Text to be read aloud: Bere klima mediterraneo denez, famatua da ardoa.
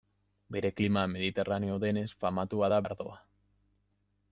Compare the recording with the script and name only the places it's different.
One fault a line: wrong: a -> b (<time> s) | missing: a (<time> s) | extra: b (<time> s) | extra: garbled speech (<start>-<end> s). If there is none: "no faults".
no faults